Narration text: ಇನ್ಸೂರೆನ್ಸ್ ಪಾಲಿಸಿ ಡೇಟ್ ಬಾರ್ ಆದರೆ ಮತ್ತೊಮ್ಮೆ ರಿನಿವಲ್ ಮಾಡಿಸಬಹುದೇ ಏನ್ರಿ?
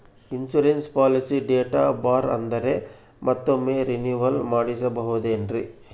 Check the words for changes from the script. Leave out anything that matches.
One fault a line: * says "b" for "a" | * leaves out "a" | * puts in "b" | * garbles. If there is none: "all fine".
all fine